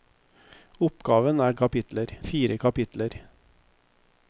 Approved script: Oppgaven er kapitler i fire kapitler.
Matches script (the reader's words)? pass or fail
pass